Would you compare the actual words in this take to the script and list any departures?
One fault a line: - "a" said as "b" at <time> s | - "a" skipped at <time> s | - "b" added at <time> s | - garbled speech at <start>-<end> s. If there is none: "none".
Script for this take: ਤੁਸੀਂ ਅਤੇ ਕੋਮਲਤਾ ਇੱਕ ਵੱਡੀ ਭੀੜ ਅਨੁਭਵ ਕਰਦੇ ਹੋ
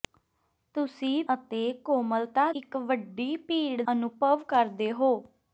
none